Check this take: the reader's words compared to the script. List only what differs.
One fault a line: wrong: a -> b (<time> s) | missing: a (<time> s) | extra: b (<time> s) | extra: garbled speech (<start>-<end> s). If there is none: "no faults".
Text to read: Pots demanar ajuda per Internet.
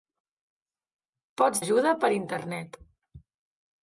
missing: demanar (1.6 s)